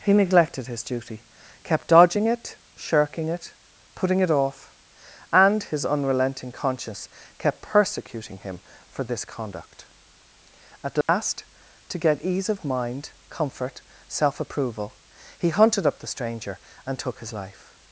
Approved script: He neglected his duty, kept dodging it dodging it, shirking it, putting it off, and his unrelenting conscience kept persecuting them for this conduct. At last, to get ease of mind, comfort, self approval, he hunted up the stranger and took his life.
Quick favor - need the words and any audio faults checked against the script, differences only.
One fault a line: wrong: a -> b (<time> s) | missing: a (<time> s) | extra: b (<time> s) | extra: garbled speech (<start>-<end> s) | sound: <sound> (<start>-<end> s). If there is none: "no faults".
missing: dodging it (2.6 s)
wrong: them -> him (8.4 s)
sound: dropout (11.0-11.1 s)